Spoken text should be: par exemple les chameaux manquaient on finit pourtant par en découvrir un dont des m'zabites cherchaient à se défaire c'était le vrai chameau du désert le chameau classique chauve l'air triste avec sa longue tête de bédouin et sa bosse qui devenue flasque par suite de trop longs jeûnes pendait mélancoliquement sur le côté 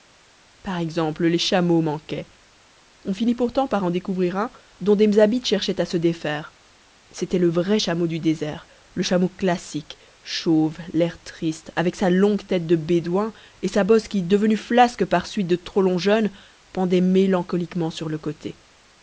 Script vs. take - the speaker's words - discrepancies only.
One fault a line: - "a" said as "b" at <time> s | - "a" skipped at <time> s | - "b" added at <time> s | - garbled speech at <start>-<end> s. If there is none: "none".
none